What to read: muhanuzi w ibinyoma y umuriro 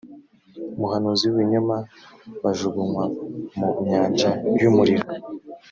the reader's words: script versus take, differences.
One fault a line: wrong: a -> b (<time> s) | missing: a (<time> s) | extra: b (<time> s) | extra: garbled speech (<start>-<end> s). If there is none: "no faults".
extra: bajugunywa mu nyanja (2.4 s)